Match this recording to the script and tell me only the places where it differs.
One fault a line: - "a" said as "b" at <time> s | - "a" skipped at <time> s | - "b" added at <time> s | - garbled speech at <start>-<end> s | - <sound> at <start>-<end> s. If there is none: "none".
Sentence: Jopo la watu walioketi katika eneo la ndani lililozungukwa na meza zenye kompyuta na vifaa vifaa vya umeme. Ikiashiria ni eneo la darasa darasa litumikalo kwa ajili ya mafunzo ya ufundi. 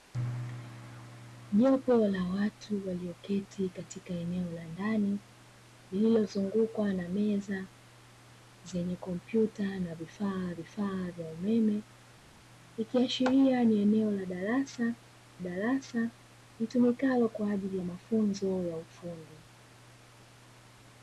none